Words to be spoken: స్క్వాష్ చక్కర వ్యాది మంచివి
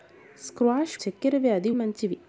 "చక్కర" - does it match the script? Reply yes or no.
yes